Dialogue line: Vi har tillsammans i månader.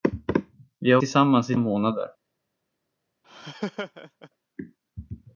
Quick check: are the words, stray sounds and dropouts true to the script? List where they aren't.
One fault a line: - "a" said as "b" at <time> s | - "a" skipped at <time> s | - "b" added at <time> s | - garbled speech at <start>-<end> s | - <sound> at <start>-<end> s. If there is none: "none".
- laugh at 3.2-4.3 s